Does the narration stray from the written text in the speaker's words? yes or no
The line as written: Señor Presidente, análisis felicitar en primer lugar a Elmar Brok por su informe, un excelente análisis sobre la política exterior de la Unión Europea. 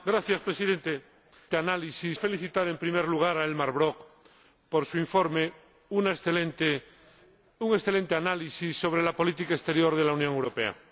no